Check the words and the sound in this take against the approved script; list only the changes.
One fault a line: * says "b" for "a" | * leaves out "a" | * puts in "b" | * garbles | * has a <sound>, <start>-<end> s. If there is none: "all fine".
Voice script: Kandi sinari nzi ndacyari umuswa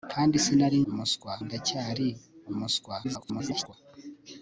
* says "umuswa" for "nzi"
* garbles